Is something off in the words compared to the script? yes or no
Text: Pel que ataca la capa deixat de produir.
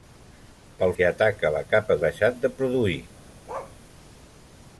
no